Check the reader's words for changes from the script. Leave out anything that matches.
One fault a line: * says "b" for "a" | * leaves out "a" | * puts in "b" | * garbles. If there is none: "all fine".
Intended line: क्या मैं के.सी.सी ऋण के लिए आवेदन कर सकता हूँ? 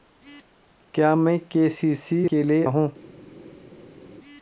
* leaves out "ऋण"
* leaves out "आवेदन कर सकता"